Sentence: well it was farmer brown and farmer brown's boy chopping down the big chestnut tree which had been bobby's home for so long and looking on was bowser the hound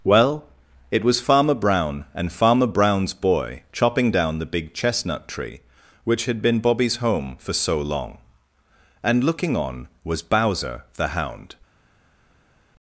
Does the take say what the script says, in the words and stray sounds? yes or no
yes